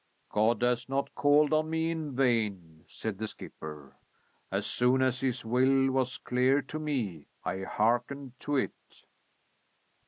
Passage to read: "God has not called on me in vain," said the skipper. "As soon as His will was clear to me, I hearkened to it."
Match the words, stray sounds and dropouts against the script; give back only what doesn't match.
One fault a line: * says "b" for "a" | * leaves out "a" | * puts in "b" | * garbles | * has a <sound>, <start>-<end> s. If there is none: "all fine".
all fine